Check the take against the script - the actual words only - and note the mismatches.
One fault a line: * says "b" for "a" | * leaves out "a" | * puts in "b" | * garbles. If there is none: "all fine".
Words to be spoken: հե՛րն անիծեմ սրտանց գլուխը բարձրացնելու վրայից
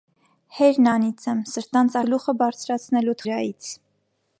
all fine